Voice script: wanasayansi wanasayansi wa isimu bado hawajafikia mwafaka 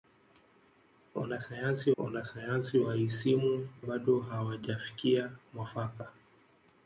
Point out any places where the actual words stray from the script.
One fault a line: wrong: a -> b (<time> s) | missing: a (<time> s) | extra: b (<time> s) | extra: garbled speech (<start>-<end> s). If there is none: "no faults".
no faults